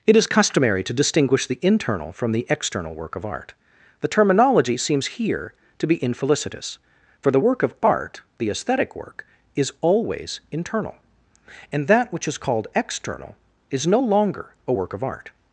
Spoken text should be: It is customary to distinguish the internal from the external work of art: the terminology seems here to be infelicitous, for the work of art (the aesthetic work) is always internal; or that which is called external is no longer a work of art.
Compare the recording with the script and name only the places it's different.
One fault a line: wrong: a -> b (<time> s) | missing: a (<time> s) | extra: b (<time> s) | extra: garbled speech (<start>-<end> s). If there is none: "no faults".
wrong: or -> and (11.7 s)